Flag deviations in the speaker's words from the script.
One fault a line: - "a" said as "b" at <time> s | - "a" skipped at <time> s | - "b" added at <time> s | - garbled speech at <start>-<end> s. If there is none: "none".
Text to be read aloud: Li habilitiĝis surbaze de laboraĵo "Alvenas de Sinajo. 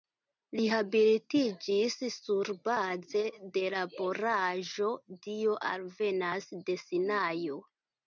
- "Dio" added at 5.3 s